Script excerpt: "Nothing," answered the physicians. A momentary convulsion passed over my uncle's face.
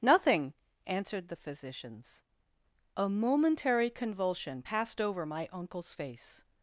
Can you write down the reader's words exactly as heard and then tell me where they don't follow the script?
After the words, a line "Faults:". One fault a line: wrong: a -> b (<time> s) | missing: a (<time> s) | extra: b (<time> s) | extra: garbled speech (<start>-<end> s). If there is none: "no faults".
"Nothing," answered the physicians. A momentary convulsion passed over my uncle's face.
Faults:
no faults